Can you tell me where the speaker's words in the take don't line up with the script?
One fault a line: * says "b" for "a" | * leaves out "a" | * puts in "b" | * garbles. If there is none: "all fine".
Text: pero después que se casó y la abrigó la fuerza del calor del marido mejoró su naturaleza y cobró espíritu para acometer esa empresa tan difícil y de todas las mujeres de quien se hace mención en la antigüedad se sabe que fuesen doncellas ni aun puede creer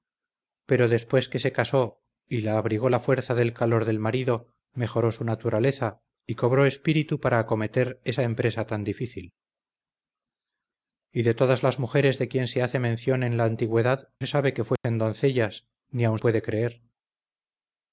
all fine